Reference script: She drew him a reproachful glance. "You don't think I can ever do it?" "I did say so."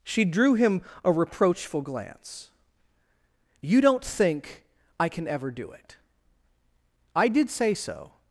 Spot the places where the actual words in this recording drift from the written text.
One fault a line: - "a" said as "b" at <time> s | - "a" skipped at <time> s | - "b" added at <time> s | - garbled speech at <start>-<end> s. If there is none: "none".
none